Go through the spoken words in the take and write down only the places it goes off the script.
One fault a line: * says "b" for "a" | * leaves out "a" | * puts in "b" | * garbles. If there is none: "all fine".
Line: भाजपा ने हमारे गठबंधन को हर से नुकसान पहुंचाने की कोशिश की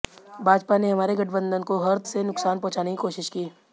all fine